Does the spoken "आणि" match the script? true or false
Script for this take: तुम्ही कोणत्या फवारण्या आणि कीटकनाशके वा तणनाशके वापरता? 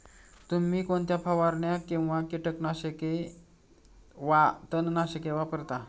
false